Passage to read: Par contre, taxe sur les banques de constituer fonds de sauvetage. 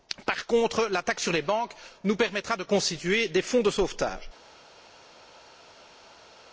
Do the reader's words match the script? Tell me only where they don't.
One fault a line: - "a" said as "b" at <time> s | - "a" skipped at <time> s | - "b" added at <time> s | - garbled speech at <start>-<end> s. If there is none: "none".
- "la" added at 0.9 s
- "nous permettra" added at 2.0 s
- "des" added at 3.3 s